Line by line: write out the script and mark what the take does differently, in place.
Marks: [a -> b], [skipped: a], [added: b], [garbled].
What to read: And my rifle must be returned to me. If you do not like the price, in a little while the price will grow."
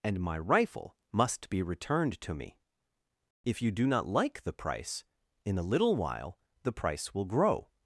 And my rifle must be returned to me. If you do not like the price, in a little while the price will grow."